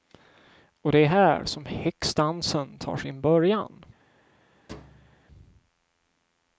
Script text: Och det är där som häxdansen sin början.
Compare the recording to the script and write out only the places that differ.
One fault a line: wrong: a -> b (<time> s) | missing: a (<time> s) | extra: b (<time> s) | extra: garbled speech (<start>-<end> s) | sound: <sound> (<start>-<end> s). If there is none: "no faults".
wrong: där -> här (1.1 s)
extra: tar (2.8 s)
sound: thud (4.7-5.2 s)